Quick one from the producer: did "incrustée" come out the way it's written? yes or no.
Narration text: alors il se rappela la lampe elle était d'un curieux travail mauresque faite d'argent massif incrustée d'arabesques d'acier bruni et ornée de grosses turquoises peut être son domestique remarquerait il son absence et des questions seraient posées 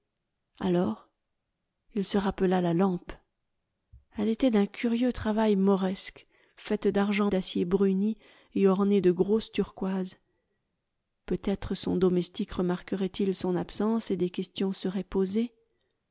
no